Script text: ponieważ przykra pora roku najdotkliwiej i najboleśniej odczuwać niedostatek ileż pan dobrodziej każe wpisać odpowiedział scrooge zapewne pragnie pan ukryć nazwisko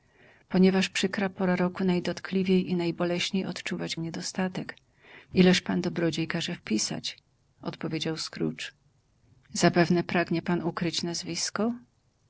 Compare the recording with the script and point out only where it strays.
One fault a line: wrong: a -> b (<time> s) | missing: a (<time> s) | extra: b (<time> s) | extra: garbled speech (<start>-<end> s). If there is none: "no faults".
no faults